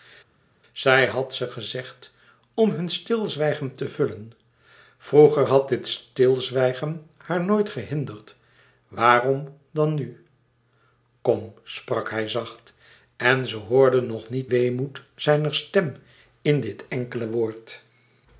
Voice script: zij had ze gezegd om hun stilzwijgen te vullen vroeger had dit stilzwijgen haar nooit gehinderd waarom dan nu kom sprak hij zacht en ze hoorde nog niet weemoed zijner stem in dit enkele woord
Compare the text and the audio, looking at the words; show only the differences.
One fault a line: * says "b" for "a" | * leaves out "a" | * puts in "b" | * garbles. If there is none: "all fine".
all fine